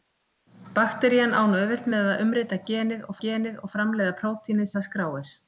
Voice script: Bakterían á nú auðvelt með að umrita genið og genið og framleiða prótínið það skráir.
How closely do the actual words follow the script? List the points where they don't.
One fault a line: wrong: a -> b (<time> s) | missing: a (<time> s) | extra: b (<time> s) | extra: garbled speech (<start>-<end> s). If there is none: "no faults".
no faults